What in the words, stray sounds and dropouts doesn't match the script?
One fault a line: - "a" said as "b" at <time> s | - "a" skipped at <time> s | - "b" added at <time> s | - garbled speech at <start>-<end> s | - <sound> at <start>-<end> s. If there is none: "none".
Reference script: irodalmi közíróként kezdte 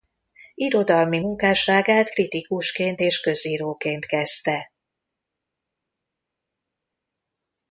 - "munkásságát kritikusként és" added at 1.2 s